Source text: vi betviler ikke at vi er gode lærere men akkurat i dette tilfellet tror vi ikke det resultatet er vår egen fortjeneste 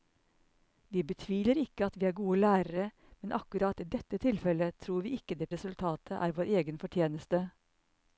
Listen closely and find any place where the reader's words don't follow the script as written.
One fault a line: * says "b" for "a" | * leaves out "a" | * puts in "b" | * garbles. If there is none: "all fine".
all fine